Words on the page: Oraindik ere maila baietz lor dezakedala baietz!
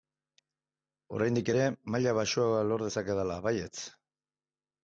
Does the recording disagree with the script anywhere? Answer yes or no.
yes